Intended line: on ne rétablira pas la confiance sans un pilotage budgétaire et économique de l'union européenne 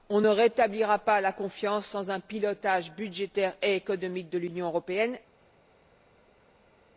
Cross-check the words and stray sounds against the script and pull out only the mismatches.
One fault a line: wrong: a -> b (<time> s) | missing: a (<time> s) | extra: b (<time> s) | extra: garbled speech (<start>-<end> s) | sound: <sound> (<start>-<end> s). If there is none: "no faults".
no faults